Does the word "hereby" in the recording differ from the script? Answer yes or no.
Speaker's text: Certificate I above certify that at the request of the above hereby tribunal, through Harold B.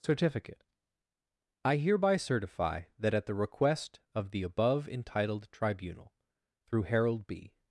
yes